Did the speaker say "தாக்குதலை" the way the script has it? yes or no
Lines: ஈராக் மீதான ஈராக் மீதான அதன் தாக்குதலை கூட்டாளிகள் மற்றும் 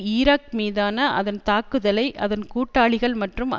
no